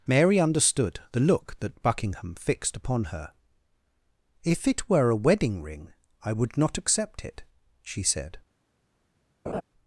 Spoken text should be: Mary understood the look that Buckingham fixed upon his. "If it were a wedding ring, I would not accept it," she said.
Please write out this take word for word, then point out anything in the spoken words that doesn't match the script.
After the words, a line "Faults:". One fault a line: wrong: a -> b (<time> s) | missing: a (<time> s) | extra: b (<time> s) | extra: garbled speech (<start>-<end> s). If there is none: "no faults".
Mary understood the look that Buckingham fixed upon her. "If it were a wedding ring, I would not accept it," she said.
Faults:
wrong: his -> her (3.0 s)